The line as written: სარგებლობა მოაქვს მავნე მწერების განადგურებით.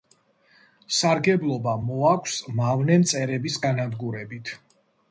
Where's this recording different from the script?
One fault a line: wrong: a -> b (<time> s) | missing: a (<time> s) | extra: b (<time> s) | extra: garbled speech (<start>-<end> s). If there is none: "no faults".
no faults